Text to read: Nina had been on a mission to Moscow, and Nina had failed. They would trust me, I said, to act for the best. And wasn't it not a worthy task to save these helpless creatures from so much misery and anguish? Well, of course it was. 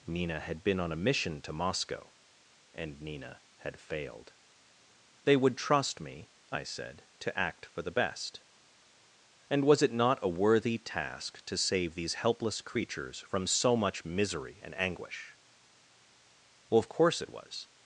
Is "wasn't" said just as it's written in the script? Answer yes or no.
no